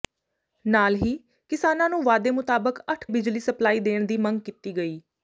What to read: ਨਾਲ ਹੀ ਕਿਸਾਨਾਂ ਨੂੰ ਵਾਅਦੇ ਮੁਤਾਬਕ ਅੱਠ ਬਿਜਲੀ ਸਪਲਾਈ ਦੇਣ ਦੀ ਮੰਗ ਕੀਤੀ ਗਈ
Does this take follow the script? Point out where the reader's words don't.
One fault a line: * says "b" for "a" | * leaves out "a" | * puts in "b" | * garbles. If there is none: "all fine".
all fine